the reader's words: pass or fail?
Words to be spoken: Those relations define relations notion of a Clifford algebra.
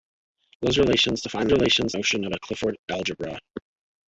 pass